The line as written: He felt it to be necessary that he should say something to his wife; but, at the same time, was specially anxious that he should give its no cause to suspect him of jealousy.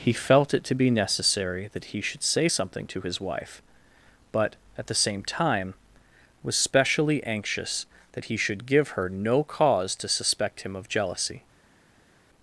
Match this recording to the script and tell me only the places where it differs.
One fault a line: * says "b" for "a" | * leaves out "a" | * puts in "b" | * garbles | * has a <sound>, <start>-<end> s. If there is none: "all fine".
* says "her" for "its"